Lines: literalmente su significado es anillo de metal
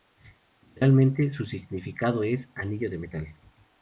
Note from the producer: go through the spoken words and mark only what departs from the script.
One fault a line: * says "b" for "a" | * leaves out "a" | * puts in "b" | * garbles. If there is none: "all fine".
all fine